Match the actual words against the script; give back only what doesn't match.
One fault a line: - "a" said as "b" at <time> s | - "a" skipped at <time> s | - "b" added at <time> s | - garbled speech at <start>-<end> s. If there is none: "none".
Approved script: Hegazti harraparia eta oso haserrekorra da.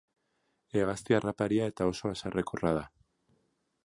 none